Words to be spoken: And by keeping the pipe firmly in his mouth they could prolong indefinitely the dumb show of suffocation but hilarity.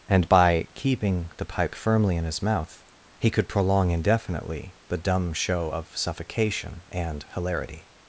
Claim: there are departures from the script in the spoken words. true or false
true